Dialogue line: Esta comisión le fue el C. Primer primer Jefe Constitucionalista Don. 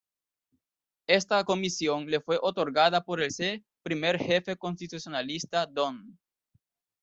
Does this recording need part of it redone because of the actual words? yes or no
yes